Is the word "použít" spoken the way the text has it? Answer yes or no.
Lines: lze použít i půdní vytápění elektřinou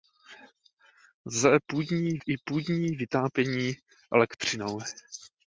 no